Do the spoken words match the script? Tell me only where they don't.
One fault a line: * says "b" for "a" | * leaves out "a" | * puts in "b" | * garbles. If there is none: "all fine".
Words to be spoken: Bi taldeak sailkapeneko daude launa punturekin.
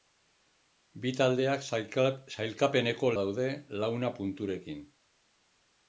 all fine